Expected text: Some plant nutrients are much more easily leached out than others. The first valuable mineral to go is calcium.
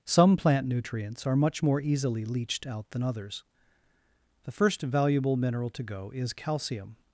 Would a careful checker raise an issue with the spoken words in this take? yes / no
no